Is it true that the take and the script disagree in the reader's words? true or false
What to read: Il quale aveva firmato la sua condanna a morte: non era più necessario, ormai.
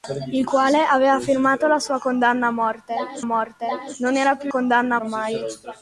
true